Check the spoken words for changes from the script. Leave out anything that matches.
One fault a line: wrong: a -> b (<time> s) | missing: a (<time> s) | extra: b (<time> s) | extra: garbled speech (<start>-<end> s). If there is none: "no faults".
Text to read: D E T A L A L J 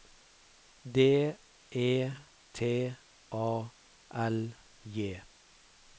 missing: A L (4.4 s)